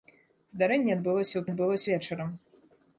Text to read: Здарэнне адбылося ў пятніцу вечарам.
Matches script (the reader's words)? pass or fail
fail